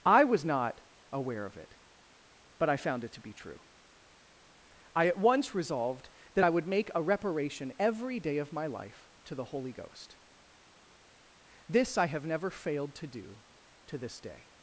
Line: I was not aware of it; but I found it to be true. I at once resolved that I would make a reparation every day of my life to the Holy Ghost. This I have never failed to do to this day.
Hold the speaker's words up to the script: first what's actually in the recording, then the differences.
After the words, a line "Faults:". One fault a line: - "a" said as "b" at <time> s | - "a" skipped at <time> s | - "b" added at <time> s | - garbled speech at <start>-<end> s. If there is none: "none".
I was not aware of it; but I found it to be true. I at once resolved that I would make a reparation every day of my life to the Holy Ghost. This I have never failed to do to this day.
Faults:
none